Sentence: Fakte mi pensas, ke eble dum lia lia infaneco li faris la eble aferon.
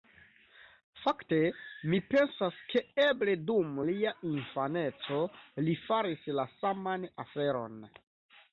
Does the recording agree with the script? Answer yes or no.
no